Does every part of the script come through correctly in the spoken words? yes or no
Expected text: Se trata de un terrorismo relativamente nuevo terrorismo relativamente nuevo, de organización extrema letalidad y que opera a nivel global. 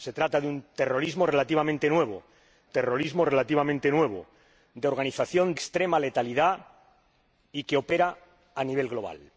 yes